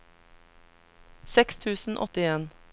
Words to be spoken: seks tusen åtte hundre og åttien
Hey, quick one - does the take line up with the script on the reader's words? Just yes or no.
no